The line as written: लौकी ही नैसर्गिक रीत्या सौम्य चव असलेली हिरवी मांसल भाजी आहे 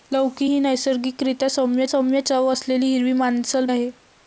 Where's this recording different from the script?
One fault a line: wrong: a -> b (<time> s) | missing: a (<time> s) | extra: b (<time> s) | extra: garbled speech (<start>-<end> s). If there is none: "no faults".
extra: सौम्य (1.8 s)
missing: भाजी (3.7 s)